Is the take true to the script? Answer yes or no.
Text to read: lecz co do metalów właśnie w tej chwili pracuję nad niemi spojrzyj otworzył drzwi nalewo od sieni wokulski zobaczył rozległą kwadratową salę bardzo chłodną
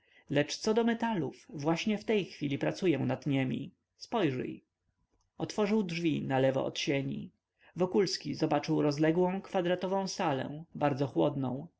yes